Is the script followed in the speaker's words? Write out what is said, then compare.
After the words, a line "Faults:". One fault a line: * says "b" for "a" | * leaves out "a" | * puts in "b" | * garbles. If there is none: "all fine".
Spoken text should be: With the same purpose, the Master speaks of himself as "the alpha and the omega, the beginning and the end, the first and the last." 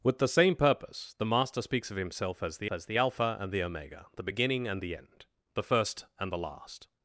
With the same purpose, the Master speaks of himself as "the as the alpha and the omega, the beginning and the end, the first and the last."
Faults:
* puts in "as the"